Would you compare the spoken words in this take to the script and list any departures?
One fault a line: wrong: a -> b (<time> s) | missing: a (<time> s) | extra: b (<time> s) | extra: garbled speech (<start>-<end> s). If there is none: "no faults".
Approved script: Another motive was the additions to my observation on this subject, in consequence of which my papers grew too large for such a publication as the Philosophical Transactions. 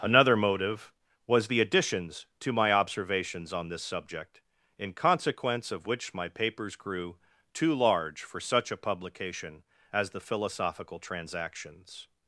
wrong: observation -> observations (2.7 s)